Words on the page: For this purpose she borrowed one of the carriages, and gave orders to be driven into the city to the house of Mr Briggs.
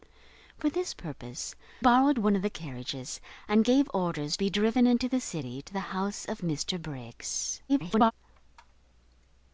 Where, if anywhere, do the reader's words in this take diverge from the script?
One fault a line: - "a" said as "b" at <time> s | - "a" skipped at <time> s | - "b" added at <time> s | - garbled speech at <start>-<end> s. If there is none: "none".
- "she" skipped at 1.5 s
- "to" skipped at 4.4 s
- garbled speech at 7.7-8.1 s